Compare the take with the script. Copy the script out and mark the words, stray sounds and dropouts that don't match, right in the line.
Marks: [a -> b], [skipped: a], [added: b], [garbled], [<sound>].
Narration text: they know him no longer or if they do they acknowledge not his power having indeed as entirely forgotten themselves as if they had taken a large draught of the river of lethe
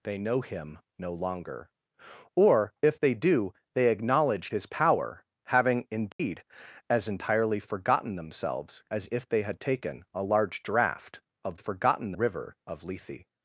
they know him no longer or if they do they acknowledge [skipped: not] his power having indeed [dropout] as entirely forgotten themselves as if they had taken a large draught of [the -> forgotten] river of lethe